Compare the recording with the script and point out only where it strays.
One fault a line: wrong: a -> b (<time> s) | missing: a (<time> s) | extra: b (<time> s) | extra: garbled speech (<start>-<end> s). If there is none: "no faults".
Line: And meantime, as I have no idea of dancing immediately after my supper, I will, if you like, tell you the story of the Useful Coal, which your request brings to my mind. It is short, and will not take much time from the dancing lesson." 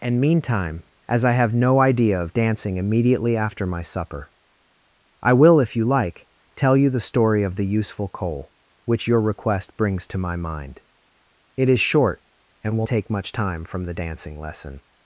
missing: not (12.9 s)